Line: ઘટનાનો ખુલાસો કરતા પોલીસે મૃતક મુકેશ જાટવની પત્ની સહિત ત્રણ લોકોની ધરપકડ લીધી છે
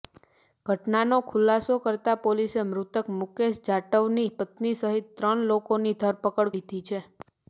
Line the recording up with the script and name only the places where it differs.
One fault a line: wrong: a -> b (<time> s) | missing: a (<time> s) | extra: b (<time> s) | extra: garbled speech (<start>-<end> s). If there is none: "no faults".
no faults